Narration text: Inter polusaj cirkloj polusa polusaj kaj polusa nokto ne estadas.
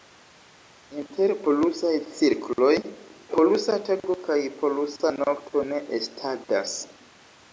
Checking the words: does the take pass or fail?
fail